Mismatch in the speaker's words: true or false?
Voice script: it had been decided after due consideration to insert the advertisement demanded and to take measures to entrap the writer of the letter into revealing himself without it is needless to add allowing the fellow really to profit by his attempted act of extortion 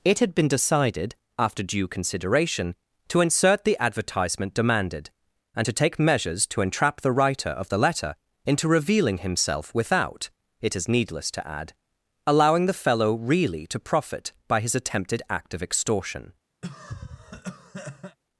false